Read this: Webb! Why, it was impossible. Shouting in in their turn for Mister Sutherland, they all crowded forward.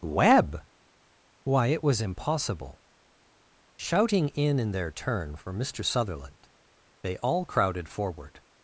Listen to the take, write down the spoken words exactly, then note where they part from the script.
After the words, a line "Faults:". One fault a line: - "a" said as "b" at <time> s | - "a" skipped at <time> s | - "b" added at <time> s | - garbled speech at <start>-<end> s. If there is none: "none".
Webb! Why, it was impossible. Shouting in in their turn for Mister Sutherland, they all crowded forward.
Faults:
none